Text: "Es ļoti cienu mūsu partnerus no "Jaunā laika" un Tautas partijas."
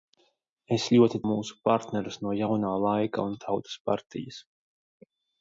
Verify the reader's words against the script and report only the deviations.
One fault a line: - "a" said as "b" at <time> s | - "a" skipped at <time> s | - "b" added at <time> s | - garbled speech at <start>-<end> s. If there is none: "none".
- "cienu" skipped at 1.2 s